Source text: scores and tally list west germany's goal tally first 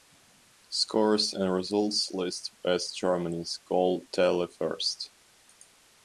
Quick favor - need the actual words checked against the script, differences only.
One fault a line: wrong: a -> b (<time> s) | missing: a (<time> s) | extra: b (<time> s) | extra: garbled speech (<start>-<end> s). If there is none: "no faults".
wrong: tally -> results (1.5 s)